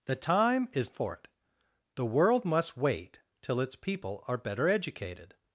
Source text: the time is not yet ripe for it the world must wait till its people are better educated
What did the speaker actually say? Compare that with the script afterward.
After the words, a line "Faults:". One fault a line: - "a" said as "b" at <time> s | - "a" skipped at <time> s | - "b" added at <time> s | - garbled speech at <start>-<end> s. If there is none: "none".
the time is for it the world must wait till its people are better educated
Faults:
- "not yet ripe" skipped at 0.9 s